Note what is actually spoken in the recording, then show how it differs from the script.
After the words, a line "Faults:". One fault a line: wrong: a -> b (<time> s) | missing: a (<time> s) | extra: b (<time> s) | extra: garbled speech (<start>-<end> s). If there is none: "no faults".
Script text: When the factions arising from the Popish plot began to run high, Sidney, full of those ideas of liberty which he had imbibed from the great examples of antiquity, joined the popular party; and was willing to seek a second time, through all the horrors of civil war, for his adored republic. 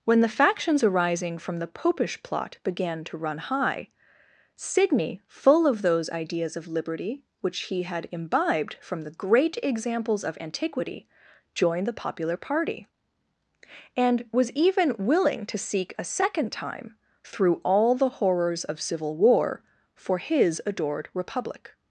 When the factions arising from the Popish plot began to run high, Sidney, full of those ideas of liberty which he had imbibed from the great examples of antiquity, joined the popular party; and was even willing to seek a second time, through all the horrors of civil war, for his adored republic.
Faults:
extra: even (14.5 s)